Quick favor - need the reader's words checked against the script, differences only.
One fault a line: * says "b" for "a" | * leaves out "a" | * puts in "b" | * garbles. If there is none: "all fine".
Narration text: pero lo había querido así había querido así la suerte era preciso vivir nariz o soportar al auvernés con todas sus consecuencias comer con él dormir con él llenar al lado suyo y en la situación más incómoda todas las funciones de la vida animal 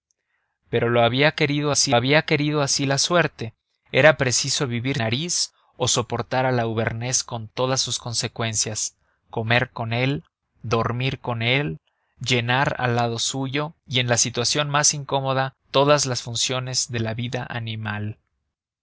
all fine